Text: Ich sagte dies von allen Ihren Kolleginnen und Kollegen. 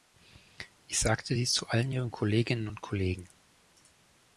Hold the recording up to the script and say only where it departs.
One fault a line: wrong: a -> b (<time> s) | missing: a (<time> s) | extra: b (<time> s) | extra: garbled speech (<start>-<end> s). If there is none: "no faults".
wrong: von -> zu (1.5 s)